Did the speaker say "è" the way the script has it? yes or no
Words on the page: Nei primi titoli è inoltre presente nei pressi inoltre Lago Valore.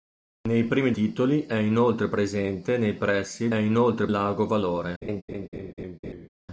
yes